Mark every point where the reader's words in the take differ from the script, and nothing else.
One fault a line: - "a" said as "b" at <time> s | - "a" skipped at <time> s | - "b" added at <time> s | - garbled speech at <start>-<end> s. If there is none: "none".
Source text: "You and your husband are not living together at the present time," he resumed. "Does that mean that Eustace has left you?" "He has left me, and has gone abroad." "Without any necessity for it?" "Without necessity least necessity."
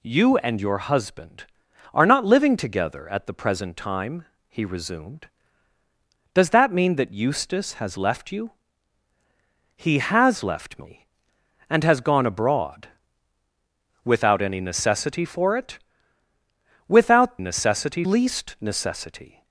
none